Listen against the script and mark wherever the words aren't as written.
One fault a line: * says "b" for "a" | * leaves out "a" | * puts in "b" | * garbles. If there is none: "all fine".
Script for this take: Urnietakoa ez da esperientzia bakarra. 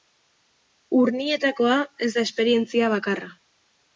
all fine